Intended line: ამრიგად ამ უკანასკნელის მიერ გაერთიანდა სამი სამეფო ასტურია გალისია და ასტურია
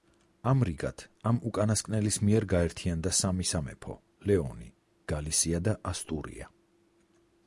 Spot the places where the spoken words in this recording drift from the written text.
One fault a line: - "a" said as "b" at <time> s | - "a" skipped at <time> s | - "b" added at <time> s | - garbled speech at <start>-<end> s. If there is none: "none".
- "ასტურია" said as "ლეონი" at 4.3 s